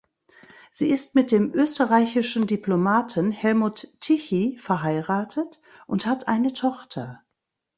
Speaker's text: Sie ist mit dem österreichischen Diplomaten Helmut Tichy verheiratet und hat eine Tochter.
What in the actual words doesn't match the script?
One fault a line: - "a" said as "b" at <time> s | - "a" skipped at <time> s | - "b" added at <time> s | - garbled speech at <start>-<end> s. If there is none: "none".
none